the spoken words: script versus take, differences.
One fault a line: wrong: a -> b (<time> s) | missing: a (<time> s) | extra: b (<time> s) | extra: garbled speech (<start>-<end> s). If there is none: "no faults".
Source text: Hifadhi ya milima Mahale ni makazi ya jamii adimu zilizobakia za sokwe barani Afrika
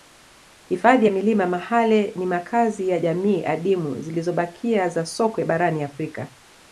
no faults